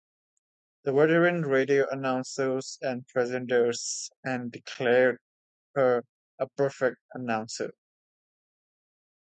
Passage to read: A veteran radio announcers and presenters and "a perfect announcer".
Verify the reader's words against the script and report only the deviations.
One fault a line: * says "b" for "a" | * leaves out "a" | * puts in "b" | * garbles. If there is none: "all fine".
* says "The" for "A"
* puts in "declared her"